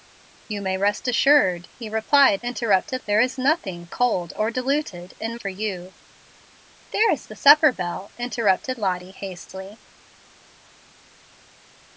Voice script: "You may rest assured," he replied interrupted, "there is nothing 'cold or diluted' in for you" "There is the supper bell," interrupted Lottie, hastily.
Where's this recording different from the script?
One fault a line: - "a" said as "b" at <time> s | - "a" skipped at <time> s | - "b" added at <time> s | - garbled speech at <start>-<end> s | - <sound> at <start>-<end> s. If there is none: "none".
none